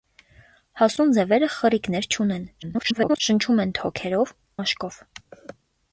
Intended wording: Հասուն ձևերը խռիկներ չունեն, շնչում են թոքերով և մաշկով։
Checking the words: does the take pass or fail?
fail